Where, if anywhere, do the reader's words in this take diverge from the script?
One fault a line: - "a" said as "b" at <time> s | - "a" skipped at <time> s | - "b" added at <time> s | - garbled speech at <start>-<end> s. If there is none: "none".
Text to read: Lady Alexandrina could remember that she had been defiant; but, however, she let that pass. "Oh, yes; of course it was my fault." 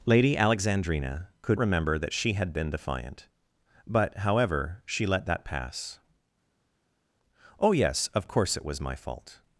none